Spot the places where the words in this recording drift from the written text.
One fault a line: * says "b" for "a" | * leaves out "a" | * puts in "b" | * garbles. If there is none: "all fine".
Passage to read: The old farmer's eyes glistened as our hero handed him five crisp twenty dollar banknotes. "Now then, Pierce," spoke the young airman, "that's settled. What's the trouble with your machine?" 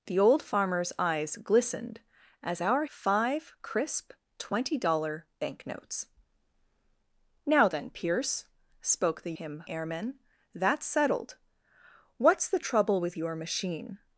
* leaves out "hero handed him"
* says "him" for "young"